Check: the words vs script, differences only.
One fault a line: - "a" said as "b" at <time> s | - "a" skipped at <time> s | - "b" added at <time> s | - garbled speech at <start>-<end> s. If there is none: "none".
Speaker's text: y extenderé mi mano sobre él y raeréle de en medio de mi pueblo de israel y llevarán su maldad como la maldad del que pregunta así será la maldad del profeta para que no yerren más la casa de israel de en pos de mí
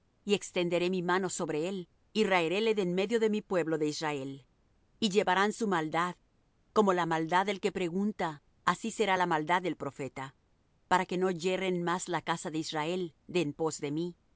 none